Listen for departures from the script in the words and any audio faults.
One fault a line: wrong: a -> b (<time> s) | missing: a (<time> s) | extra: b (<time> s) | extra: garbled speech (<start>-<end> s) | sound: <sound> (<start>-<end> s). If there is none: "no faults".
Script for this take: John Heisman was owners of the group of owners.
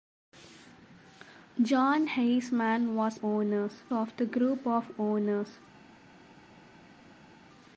no faults